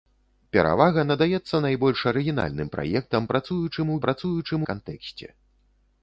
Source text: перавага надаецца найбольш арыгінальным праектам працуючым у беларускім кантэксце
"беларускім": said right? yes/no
no